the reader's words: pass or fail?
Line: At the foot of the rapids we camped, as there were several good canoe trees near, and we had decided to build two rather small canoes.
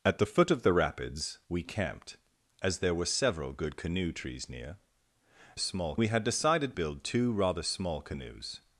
fail